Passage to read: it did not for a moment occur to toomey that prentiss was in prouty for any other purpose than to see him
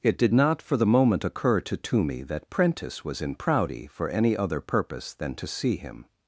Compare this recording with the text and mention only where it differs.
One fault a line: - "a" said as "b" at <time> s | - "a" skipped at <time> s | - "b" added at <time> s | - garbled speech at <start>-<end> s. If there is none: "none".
- "a" said as "the" at 0.8 s